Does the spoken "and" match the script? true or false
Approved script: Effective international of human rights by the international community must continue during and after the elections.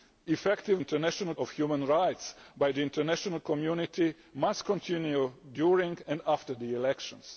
true